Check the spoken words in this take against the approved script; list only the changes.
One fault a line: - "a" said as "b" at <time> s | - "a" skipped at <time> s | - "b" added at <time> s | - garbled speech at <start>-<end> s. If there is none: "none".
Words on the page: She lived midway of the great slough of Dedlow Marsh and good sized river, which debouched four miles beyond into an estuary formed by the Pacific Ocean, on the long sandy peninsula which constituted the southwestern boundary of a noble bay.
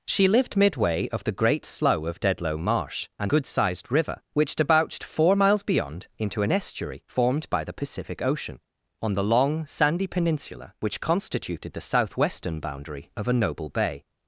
none